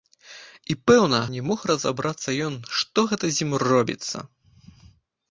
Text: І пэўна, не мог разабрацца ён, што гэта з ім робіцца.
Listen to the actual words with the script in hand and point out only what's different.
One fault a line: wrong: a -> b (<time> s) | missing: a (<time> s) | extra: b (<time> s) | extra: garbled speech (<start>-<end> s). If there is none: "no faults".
no faults